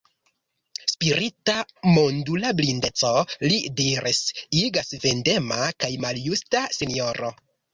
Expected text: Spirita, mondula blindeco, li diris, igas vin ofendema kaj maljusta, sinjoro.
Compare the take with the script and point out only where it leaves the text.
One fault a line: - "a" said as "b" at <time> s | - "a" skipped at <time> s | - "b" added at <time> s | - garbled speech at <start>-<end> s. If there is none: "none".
- "vin" skipped at 4.9 s